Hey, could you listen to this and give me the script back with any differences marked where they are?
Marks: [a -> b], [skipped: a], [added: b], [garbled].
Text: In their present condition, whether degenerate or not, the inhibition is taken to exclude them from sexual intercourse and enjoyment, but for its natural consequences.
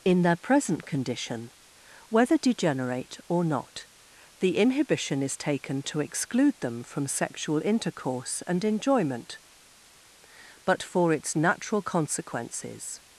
In their present condition, whether degenerate or not, the inhibition is taken to exclude them from sexual intercourse and enjoyment, but for its natural consequences.